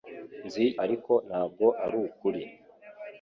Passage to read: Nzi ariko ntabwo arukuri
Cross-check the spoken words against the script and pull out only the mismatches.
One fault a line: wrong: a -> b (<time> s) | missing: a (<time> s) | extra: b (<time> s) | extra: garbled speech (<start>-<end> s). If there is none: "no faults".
no faults